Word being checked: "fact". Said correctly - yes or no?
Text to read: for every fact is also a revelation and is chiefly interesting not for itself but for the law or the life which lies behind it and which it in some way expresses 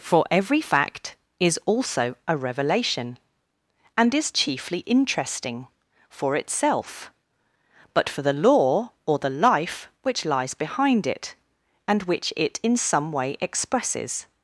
yes